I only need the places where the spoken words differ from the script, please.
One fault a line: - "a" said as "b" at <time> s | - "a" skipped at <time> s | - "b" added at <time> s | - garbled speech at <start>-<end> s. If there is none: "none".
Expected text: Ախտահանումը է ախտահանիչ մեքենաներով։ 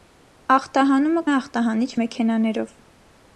none